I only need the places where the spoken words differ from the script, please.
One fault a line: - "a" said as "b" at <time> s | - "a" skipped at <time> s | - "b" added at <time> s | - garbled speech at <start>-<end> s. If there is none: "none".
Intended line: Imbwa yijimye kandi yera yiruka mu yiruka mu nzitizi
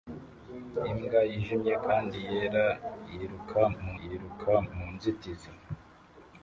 none